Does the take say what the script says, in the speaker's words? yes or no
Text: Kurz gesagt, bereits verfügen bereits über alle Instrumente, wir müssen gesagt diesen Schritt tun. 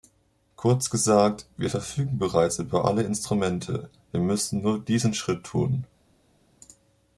no